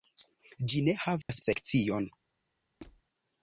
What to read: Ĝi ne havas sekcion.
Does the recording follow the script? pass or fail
pass